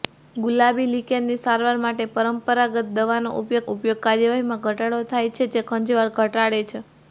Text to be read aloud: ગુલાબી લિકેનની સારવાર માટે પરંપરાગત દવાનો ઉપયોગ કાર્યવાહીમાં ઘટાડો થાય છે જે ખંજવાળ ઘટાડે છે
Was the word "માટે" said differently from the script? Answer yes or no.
no